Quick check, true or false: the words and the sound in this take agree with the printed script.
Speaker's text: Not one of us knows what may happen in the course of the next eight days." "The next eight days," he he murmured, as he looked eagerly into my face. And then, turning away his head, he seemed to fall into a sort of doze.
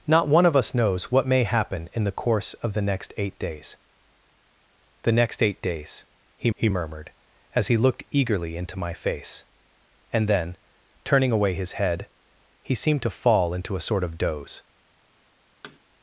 false